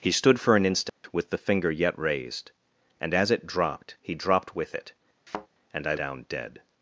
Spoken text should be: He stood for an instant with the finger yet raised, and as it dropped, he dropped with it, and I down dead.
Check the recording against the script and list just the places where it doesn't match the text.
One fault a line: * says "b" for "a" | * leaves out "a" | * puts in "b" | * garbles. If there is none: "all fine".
all fine